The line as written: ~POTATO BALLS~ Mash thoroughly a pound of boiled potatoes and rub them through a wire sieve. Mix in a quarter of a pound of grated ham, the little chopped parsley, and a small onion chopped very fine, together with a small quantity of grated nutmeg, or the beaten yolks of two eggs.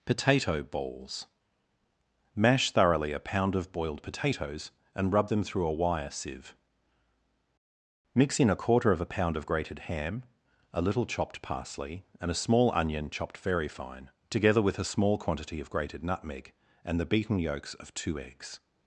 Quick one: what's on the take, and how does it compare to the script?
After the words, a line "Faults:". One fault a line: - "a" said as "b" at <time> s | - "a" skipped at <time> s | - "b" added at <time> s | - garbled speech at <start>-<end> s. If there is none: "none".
~POTATO BALLS~ Mash thoroughly a pound of boiled potatoes and rub them through a wire sieve. Mix in a quarter of a pound of grated ham, a little chopped parsley, and a small onion chopped very fine, together with a small quantity of grated nutmeg, and the beaten yolks of two eggs.
Faults:
- "the" said as "a" at 10.7 s
- "or" said as "and" at 16.9 s